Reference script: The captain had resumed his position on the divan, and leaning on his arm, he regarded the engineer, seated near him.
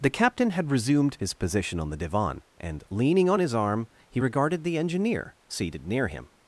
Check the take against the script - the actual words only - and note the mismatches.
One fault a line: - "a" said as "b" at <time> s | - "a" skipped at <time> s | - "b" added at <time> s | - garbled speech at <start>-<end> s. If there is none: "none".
none